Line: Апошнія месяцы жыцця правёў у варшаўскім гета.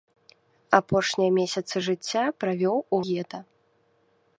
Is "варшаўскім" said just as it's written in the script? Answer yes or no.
no